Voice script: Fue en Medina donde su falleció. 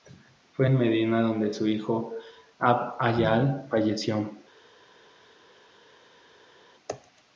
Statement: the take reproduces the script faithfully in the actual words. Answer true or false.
false